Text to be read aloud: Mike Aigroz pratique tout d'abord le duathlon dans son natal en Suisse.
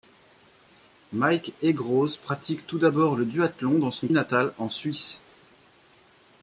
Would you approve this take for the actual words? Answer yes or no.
yes